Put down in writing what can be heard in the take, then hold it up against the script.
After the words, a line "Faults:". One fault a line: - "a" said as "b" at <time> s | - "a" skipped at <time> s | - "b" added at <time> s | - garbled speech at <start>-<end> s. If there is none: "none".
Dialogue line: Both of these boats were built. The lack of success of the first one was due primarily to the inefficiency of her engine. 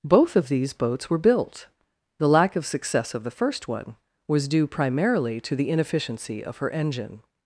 Both of these boats were built. The lack of success of the first one was due primarily to the inefficiency of her engine.
Faults:
none